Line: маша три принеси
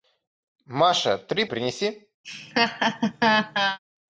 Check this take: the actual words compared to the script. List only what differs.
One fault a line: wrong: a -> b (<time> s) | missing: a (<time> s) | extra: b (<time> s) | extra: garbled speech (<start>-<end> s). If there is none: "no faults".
no faults